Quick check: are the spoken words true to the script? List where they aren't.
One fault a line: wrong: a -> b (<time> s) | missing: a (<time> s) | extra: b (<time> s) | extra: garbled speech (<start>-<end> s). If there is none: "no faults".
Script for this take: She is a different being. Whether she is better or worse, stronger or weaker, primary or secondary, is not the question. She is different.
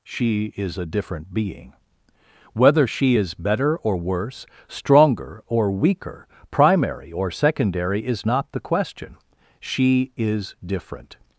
no faults